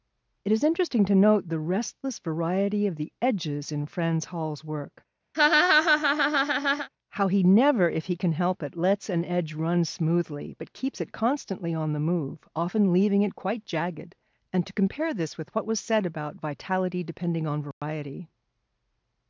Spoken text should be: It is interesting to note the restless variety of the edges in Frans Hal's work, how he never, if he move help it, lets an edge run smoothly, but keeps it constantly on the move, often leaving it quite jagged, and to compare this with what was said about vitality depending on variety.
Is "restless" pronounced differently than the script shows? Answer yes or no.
no